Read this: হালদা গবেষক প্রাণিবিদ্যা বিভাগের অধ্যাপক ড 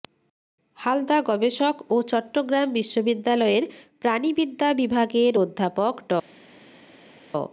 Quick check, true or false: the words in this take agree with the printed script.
false